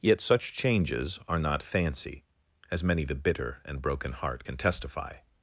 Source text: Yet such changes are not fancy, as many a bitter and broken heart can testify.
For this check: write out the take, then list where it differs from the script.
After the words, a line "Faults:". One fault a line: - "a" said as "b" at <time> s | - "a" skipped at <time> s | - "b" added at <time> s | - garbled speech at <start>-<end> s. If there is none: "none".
Yet such changes are not fancy, as many the bitter and broken heart can testify.
Faults:
- "a" said as "the" at 3.0 s